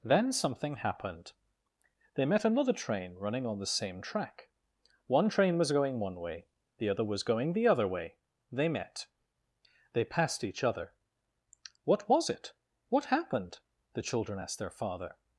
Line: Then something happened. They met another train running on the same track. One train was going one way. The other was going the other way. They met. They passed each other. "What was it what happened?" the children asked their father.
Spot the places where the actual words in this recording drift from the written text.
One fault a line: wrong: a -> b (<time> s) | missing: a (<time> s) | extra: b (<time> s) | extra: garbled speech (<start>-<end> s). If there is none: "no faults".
no faults